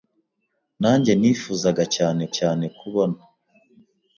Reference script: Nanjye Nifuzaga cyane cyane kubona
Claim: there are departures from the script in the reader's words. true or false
false